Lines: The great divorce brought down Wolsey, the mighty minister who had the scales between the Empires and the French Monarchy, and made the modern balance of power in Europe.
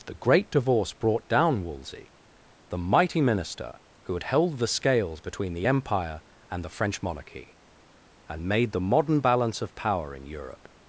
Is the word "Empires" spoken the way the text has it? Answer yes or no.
no